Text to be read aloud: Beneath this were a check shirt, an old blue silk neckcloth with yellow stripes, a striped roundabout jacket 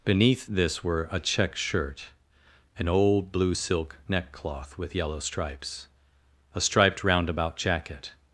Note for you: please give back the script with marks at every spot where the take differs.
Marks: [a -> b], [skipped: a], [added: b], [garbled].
Beneath this were a check shirt, an old blue silk neckcloth with yellow stripes, a striped roundabout jacket